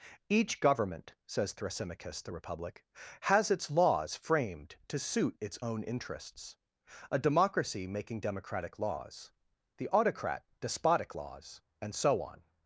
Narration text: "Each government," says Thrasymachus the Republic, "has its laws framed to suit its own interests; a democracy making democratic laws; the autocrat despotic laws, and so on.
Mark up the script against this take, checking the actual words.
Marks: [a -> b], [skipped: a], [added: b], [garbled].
"Each government," says Thrasymachus the Republic, "has its laws framed to suit its own interests; a democracy making democratic laws; the autocrat despotic laws, and so on.